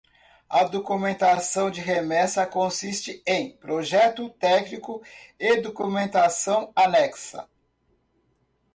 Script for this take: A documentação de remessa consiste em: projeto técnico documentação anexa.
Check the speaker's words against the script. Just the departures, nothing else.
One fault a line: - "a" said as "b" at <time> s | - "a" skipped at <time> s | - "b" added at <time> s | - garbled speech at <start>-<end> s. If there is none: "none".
- "e" added at 5.4 s